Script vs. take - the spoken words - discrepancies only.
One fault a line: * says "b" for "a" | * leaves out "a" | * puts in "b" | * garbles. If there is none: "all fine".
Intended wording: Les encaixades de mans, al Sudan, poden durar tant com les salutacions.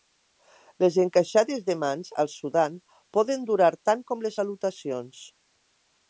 all fine